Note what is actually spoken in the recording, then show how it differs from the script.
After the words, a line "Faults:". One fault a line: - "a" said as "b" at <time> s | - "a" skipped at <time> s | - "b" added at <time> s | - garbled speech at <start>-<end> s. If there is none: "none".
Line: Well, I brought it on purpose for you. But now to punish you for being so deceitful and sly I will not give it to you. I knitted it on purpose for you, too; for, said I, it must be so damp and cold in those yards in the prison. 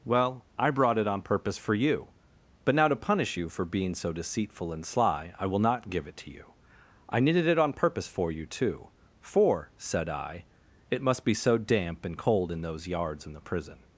Well, I brought it on purpose for you. But now to punish you for being so deceitful and sly I will not give it to you. I knitted it on purpose for you, too; for, said I, it must be so damp and cold in those yards in the prison.
Faults:
none